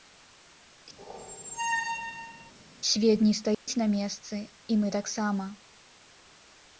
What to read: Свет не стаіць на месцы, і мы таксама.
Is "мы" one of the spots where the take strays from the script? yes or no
no